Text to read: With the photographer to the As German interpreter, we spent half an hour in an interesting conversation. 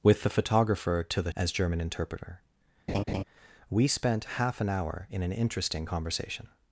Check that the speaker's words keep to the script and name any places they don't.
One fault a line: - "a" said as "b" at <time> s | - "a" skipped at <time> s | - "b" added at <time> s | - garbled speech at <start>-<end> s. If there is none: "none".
none